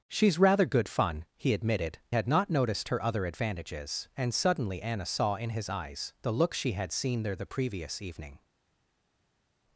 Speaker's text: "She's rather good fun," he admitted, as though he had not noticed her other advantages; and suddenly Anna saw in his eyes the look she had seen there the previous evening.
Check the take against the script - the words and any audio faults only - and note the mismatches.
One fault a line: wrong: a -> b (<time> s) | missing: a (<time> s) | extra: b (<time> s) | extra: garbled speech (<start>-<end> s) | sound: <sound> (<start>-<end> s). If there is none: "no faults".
missing: as though he (2.0 s)